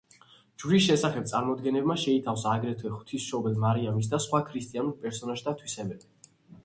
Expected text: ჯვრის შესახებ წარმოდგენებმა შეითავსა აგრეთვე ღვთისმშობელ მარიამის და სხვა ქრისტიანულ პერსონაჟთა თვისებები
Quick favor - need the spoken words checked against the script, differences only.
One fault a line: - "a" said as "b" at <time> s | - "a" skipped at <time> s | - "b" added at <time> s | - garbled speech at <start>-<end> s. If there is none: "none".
none